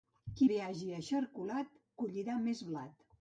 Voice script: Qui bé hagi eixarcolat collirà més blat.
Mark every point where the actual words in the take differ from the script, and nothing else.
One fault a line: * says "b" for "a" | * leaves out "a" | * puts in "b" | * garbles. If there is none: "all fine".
all fine